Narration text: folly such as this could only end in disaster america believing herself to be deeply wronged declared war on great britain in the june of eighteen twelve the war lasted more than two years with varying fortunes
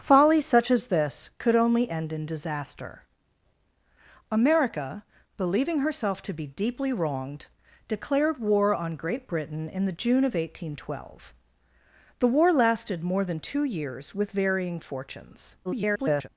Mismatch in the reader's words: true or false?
true